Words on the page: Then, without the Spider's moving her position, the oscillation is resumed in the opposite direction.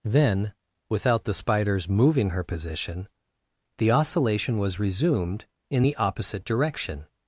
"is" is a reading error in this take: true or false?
true